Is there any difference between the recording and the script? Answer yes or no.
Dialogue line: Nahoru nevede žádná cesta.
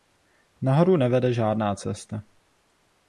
no